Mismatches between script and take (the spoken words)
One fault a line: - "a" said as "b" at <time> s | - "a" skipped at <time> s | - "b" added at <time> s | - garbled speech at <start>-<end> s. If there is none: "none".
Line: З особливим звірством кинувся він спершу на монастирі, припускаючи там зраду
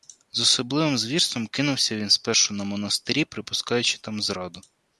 none